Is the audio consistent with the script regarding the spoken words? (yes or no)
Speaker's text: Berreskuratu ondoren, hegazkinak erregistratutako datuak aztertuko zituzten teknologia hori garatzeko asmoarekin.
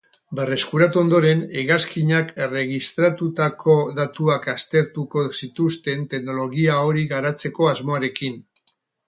yes